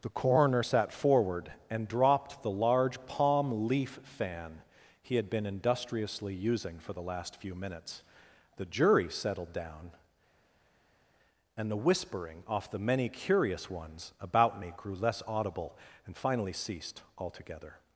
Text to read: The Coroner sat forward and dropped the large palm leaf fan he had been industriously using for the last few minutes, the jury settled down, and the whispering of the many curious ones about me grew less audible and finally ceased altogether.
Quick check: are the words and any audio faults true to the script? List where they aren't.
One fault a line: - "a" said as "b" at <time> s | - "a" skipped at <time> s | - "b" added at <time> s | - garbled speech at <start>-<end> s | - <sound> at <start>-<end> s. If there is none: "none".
- "of" said as "off" at 12.5 s